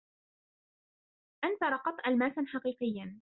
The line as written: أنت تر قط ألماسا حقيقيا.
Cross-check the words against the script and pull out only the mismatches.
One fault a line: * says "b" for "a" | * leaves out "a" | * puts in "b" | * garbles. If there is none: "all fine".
all fine